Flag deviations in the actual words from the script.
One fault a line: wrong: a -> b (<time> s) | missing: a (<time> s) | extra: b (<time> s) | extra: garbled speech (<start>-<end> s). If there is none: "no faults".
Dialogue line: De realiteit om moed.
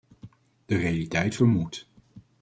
no faults